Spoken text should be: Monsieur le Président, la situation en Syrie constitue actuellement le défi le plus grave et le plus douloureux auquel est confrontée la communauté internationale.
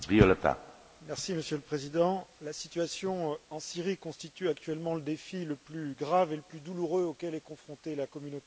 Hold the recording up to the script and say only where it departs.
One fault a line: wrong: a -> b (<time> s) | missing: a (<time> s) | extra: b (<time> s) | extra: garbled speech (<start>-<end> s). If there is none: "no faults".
no faults